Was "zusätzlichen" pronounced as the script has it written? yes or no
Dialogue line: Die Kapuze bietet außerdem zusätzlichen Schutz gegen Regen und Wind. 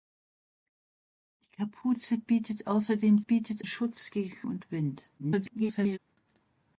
no